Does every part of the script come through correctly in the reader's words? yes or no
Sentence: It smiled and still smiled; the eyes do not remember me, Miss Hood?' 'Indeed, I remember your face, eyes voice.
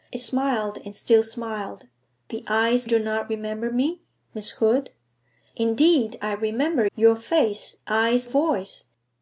yes